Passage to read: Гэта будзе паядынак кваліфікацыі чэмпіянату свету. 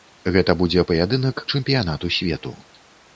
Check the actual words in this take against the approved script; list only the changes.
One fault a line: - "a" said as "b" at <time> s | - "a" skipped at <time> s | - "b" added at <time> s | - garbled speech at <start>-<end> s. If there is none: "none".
- "кваліфікацыі" skipped at 1.4 s